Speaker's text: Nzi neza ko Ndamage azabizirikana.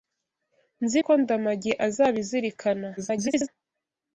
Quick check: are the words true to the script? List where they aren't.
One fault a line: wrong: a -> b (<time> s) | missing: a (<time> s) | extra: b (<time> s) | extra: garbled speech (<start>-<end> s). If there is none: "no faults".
missing: neza (1.0 s)
extra: garbled speech (3.0-3.5 s)